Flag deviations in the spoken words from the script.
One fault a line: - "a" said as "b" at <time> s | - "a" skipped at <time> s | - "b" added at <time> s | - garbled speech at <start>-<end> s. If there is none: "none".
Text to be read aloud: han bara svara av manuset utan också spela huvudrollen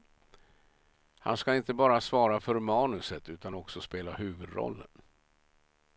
- "ska inte" added at 1.4 s
- "av" said as "för" at 2.4 s